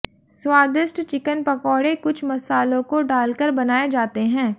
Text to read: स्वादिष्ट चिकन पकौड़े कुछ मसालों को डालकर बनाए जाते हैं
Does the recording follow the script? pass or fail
pass